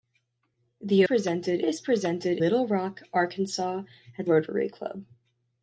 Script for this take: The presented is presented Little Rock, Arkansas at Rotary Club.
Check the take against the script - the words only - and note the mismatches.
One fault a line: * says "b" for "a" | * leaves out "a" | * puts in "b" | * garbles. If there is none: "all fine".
all fine